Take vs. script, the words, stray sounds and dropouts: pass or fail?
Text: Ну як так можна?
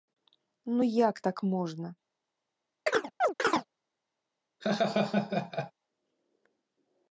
fail